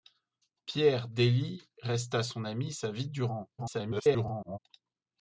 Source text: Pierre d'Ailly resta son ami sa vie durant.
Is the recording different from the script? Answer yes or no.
yes